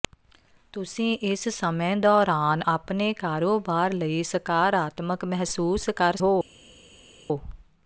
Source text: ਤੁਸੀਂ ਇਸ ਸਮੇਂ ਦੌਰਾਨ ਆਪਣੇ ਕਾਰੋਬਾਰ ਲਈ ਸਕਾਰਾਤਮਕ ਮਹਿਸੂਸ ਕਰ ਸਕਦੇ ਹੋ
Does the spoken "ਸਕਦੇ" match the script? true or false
false